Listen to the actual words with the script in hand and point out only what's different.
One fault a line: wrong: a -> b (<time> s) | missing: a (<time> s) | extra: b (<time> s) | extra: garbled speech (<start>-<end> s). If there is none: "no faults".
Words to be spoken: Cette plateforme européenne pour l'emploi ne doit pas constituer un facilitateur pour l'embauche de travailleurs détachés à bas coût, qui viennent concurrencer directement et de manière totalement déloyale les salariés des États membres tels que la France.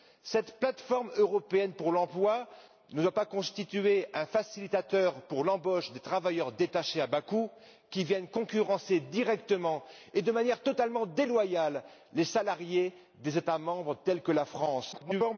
extra: garbled speech (14.9-15.4 s)